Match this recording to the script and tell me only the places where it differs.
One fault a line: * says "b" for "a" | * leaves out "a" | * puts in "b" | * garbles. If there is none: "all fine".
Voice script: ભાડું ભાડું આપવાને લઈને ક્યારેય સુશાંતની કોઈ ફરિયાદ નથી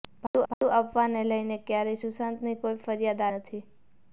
all fine